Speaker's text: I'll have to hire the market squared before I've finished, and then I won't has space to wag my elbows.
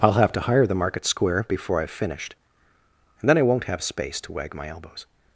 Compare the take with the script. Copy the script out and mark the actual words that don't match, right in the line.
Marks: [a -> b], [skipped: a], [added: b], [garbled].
I'll have to hire the market [squared -> square] before I've finished, and then I won't [has -> have] space to wag my elbows.